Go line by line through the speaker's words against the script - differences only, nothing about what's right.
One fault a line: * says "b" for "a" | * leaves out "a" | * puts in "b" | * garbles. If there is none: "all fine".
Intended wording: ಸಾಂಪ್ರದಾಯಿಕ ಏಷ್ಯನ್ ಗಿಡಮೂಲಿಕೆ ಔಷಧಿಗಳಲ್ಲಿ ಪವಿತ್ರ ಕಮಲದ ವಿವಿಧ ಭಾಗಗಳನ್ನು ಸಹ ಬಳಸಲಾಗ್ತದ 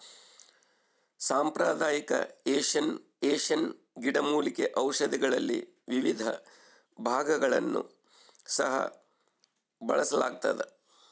* puts in "ಏಷ್ಯನ್"
* leaves out "ಪವಿತ್ರ ಕಮಲದ"